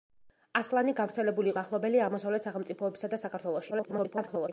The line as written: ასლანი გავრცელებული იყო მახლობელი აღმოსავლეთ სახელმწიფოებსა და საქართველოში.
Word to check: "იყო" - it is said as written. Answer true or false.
false